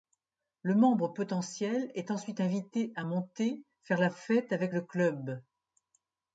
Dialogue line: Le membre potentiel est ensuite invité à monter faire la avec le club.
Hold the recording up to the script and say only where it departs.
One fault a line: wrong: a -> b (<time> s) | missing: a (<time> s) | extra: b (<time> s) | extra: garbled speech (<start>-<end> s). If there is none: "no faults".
extra: fête (4.1 s)